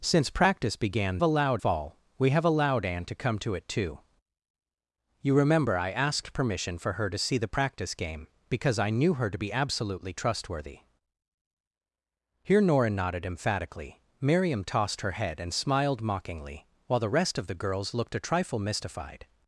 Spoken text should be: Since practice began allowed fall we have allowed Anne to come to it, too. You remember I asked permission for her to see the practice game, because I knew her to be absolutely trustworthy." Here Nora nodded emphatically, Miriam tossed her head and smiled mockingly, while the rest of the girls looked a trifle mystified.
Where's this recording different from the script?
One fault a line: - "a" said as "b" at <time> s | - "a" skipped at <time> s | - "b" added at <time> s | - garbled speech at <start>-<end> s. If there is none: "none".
none